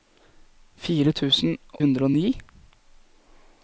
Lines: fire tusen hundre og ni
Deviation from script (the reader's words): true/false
false